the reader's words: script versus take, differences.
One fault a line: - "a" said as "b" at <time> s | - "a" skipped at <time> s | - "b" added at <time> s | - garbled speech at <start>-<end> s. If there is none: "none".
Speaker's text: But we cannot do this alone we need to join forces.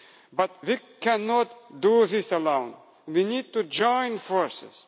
none